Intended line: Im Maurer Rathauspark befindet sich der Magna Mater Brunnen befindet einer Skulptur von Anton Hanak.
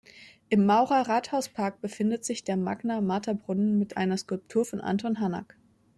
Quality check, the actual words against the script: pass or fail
fail